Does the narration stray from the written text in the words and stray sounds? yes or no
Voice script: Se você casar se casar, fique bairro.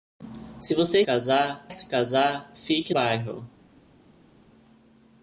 no